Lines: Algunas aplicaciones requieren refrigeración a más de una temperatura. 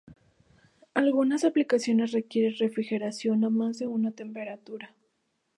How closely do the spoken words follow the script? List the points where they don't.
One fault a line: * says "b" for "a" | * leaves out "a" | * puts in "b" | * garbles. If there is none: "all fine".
all fine